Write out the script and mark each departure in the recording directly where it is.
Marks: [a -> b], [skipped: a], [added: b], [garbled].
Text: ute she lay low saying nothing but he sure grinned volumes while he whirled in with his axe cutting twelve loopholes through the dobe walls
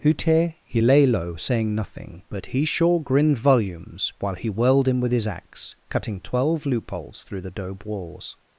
ute [she -> he] lay low saying nothing but he sure grinned volumes while he whirled in with his axe cutting twelve loopholes through the dobe walls